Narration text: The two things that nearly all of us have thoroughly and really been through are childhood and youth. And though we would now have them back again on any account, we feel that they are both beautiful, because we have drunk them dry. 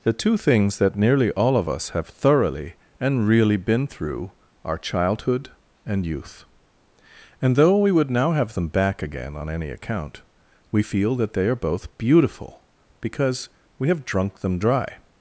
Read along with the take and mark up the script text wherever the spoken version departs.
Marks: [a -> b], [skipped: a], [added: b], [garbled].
The two things that nearly all of us have thoroughly and really been through are childhood and youth. And though we would now have them back again on any account, we feel that they are both beautiful, because we have drunk them dry.